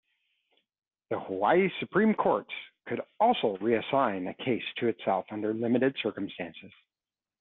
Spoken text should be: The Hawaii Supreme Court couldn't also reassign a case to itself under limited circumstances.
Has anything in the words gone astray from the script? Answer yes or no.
yes